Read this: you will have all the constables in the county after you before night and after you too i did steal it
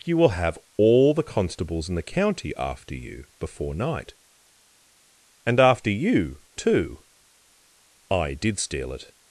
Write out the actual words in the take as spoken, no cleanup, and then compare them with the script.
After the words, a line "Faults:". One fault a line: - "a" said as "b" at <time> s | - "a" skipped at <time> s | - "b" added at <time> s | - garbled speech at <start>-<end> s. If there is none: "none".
you will have all the constables in the county after you before night and after you too i did steal it
Faults:
none